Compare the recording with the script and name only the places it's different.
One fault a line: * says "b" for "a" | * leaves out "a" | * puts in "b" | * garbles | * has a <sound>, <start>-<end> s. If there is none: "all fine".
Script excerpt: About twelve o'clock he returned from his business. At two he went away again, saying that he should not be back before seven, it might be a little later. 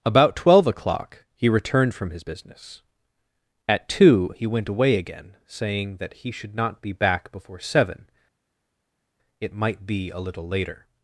all fine